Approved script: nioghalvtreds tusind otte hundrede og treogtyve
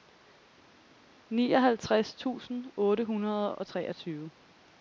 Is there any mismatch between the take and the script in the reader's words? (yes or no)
no